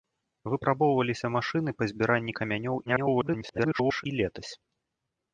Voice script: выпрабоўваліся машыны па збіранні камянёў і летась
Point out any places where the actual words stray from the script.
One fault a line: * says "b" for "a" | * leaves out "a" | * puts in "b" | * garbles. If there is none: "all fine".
* garbles